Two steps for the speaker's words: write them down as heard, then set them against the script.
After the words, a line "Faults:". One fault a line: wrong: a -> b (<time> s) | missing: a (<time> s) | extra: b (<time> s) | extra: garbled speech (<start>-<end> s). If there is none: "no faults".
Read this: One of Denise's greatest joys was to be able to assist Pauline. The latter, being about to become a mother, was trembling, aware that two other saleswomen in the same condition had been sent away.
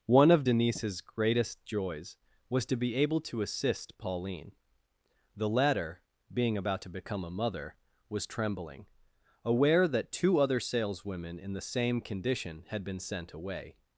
One of Denise's greatest joys was to be able to assist Pauline. The latter, being about to become a mother, was trembling, aware that two other saleswomen in the same condition had been sent away.
Faults:
no faults